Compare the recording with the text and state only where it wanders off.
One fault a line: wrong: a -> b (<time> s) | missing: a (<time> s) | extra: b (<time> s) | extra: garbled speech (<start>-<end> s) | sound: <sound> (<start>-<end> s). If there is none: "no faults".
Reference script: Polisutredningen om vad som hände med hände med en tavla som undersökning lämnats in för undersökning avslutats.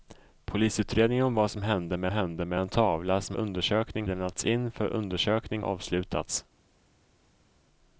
no faults